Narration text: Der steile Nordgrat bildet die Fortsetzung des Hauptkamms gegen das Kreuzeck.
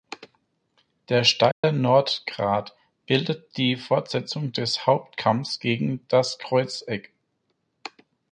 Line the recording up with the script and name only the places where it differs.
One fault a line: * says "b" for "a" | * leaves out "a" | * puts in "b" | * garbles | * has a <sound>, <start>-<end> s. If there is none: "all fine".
* has a dropout, 1.5-1.6 s